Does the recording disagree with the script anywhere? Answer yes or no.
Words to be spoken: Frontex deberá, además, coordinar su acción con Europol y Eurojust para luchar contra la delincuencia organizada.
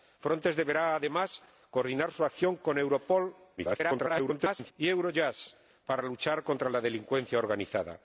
yes